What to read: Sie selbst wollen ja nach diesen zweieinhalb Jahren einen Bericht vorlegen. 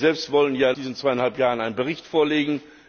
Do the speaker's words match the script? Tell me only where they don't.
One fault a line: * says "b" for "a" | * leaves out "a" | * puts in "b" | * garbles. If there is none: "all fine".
* leaves out "nach"